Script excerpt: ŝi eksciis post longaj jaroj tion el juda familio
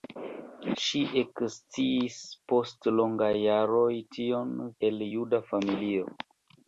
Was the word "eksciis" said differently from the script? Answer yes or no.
no